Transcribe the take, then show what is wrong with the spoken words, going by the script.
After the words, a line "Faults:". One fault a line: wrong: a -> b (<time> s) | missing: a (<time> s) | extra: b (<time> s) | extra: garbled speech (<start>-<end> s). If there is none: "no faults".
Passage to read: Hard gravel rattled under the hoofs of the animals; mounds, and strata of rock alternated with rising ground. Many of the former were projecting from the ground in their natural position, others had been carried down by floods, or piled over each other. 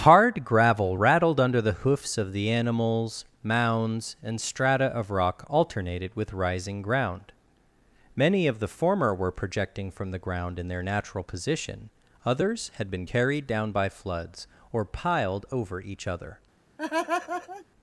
Hard gravel rattled under the hoofs of the animals; mounds, and strata of rock alternated with rising ground. Many of the former were projecting from the ground in their natural position, others had been carried down by floods, or piled over each other.
Faults:
no faults